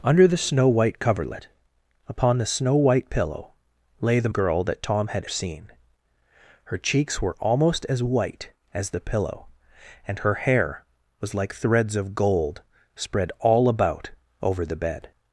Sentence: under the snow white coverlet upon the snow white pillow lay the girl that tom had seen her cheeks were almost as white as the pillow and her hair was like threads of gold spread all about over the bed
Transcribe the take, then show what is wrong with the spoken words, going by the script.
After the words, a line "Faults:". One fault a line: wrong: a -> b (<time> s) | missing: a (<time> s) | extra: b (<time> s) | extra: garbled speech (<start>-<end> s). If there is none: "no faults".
under the snow white coverlet upon the snow white pillow lay the girl that tom had seen her cheeks were almost as white as the pillow and her hair was like threads of gold spread all about over the bed
Faults:
no faults